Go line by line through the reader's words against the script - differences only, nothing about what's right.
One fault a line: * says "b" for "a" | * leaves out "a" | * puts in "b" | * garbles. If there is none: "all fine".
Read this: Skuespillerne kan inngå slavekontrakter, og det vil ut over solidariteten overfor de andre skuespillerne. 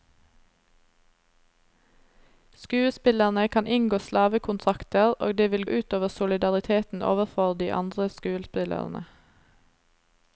all fine